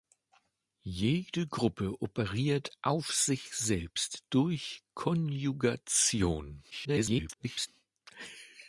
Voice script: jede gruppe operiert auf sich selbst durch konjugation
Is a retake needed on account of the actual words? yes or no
yes